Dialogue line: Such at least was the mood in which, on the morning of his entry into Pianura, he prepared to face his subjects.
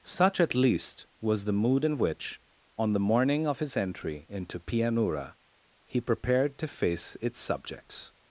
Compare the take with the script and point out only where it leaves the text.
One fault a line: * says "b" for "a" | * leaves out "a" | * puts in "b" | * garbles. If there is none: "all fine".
* says "its" for "his"